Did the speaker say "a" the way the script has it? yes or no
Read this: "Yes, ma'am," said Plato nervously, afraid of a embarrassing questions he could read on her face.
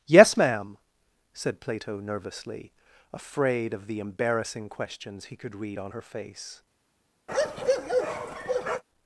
no